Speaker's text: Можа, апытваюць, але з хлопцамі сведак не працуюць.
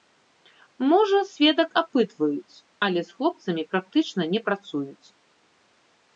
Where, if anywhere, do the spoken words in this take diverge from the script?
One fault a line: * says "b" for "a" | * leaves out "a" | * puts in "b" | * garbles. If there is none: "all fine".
* puts in "сведак"
* says "практычна" for "сведак"